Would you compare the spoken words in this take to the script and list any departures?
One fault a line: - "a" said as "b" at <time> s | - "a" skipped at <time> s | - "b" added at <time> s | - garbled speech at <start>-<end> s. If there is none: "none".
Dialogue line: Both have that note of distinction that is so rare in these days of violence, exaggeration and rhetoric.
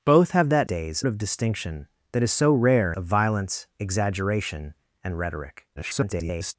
- "note" said as "days" at 0.6 s
- "in these days" skipped at 2.9 s
- garbled speech at 5.8-6.6 s